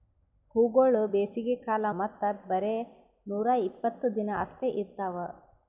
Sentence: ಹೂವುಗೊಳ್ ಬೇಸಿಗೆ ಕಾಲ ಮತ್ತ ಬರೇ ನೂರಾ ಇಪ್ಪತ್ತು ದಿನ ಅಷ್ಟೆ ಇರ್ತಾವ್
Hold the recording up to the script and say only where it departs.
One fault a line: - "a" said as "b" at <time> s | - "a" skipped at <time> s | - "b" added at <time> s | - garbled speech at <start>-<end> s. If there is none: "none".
none